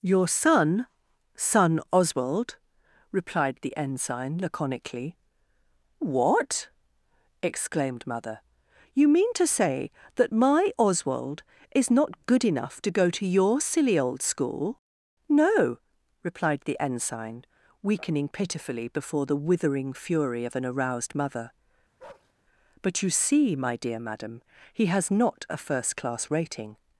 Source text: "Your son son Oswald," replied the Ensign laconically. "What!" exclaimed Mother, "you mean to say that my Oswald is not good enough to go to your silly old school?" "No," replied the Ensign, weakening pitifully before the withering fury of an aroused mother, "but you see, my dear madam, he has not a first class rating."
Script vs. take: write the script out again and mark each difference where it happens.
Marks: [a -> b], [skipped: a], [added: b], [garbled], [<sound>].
"Your son son Oswald," replied the Ensign laconically. "What!" exclaimed Mother, "you mean to say that my Oswald is not good enough to go to your silly old school?" "No," replied the Ensign, weakening pitifully before the withering fury of an aroused mother, [bark] "but you see, my dear madam, he has not a first class rating."